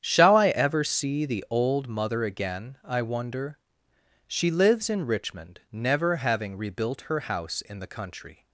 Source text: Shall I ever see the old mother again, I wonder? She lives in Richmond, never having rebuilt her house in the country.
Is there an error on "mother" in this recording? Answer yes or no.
no